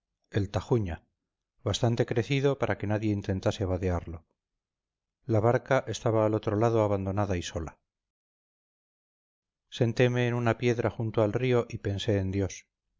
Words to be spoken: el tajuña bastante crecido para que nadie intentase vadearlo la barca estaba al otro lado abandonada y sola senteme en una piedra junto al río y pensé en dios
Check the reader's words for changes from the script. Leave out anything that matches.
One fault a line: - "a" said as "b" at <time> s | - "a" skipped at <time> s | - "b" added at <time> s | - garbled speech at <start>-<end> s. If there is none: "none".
none